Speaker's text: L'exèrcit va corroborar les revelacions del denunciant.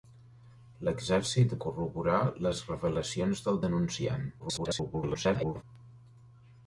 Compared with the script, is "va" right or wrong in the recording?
wrong